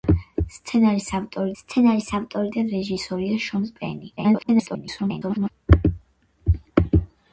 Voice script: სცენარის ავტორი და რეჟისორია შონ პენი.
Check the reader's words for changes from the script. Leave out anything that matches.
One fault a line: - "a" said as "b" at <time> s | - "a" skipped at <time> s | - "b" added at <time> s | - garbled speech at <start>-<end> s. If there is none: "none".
- "სცენარის ავტორი" added at 1.6 s
- garbled speech at 4.2-5.5 s